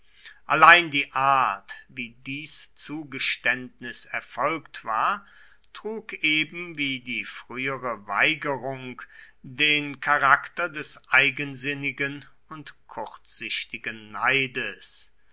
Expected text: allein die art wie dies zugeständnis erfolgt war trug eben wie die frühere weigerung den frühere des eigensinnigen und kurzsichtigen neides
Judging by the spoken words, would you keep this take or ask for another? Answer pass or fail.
fail